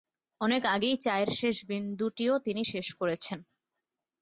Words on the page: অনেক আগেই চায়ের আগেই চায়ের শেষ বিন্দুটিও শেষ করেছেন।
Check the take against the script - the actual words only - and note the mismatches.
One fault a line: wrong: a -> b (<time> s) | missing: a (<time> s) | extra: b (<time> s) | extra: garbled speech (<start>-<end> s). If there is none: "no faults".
missing: আগেই চায়ের (1.3 s)
extra: তিনি (2.4 s)